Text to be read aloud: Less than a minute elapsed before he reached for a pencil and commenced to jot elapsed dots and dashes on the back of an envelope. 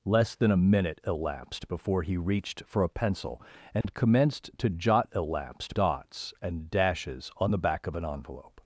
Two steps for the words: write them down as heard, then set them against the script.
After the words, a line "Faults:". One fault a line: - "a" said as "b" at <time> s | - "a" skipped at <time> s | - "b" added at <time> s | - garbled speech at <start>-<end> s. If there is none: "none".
Less than a minute elapsed before he reached for a pencil and commenced to jot elapsed dots and dashes on the back of an envelope.
Faults:
none